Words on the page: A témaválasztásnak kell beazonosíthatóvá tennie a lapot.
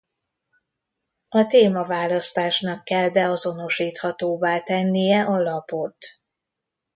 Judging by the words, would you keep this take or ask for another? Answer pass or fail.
pass